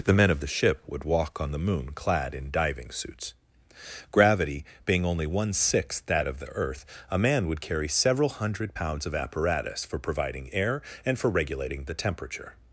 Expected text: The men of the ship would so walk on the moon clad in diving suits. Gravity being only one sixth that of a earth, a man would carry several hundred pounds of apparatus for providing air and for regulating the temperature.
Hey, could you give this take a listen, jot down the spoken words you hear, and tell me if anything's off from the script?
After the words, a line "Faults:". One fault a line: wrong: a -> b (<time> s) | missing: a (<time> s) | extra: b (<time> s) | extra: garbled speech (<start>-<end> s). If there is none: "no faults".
The men of the ship would walk on the moon clad in diving suits. Gravity being only one sixth that of the earth, a man would carry several hundred pounds of apparatus for providing air and for regulating the temperature.
Faults:
missing: so (1.0 s)
wrong: a -> the (6.4 s)